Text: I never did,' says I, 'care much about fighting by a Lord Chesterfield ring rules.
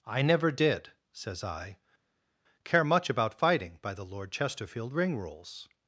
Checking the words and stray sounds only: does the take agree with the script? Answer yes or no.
no